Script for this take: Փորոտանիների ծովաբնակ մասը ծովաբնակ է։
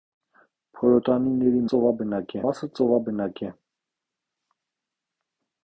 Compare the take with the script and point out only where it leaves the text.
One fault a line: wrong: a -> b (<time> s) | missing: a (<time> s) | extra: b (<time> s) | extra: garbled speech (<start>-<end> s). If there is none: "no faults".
no faults